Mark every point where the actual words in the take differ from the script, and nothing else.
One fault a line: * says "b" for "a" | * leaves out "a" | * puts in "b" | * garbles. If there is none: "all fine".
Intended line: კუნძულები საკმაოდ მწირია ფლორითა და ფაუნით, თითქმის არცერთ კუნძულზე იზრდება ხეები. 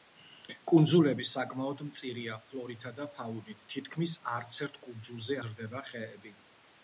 all fine